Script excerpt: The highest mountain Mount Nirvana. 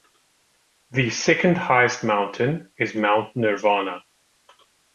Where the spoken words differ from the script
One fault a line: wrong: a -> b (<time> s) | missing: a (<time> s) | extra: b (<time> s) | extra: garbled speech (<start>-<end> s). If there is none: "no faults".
extra: second (1.1 s)
extra: is (2.8 s)